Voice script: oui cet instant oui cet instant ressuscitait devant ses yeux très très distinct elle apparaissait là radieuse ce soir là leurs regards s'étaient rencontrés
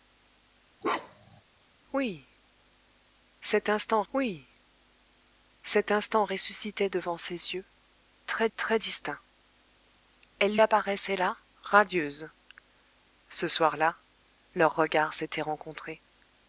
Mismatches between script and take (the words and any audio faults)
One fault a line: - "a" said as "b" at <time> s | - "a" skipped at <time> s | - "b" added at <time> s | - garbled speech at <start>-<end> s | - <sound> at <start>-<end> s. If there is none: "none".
- bark at 0.8-1.4 s